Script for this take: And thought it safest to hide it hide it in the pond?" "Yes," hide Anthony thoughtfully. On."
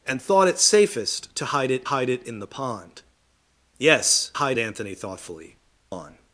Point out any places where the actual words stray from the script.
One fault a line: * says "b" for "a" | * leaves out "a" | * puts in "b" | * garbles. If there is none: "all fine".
all fine